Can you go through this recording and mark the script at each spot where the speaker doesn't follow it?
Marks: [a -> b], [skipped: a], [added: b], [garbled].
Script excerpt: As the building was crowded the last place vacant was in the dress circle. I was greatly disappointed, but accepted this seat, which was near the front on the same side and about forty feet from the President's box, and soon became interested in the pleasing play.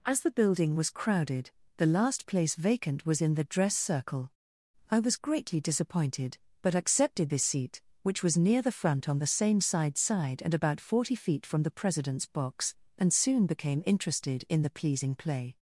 As the building was crowded the last place vacant was in the dress circle. I was greatly disappointed, but accepted this seat, which was near the front on the same side [added: side] and about forty feet from the President's box, and soon became interested in the pleasing play.